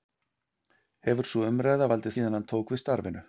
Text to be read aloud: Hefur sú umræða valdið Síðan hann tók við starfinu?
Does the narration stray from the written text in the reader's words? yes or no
no